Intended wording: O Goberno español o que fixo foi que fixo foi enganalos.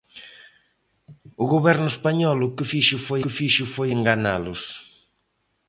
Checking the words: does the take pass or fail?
pass